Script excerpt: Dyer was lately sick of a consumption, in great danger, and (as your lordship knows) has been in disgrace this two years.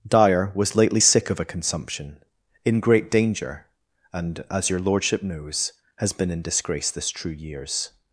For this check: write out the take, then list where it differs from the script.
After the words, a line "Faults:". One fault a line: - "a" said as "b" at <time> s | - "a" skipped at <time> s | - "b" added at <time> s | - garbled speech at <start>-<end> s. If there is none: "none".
Dyer was lately sick of a consumption, in great danger, and (as your lordship knows) has been in disgrace this true years.
Faults:
- "two" said as "true" at 7.1 s